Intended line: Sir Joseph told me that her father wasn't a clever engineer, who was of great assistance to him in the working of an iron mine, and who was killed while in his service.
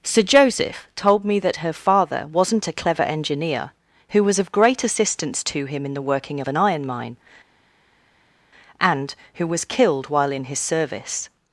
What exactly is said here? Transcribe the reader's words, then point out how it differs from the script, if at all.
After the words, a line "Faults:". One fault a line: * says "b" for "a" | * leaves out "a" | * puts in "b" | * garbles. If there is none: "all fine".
Sir Joseph told me that her father wasn't a clever engineer, who was of great assistance to him in the working of an iron mine, and who was killed while in his service.
Faults:
all fine